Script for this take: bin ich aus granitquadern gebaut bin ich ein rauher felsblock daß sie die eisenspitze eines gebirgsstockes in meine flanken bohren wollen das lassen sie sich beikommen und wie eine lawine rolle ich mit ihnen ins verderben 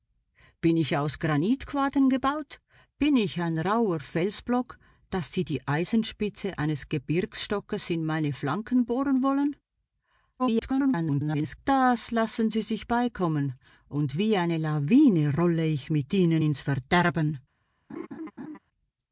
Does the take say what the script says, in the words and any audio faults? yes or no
no